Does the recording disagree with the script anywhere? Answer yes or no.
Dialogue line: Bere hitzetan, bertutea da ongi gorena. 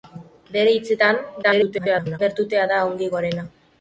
yes